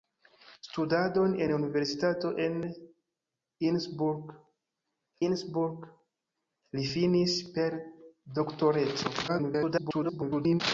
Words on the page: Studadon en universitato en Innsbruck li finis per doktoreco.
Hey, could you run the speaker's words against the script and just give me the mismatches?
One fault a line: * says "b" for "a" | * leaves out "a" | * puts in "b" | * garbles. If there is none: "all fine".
* puts in "Innsbruck"
* garbles